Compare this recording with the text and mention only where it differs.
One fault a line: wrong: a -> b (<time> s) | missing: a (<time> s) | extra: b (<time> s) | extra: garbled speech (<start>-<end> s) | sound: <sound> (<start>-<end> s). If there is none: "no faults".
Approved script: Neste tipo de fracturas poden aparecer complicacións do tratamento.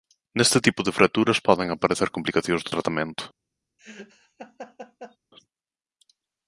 sound: laugh (3.8-5.2 s)